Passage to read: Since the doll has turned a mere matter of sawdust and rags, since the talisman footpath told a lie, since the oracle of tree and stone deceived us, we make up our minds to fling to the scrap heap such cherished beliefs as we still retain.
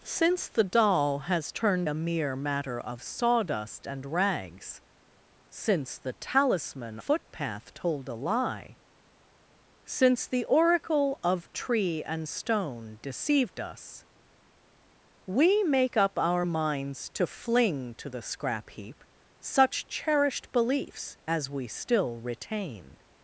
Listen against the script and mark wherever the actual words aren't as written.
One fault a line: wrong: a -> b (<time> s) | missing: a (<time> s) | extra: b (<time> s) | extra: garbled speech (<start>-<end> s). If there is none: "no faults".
no faults